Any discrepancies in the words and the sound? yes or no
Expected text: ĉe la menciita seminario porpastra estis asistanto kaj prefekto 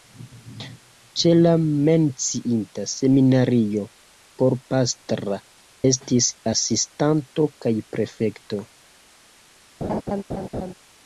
yes